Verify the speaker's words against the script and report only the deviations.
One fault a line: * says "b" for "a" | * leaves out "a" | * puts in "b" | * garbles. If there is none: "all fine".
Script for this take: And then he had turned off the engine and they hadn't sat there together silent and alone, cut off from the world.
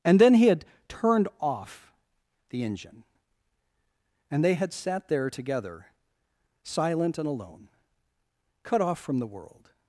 * says "had" for "hadn't"